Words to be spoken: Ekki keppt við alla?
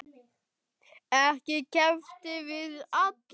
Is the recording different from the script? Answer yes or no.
no